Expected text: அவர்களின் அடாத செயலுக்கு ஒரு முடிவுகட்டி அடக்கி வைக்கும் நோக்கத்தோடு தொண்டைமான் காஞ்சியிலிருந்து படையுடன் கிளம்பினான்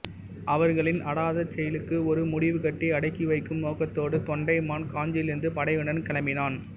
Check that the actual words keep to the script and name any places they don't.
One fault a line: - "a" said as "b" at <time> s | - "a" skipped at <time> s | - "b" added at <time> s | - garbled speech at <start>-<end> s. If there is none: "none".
none